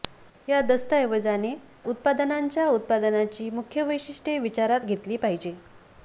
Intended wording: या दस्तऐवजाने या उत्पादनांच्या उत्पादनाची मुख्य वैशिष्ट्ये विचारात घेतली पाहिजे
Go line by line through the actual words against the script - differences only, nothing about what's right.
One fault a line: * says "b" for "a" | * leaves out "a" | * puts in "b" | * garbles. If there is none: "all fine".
* leaves out "या"